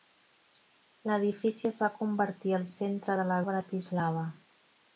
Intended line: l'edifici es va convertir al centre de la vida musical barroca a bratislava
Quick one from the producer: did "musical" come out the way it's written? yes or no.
no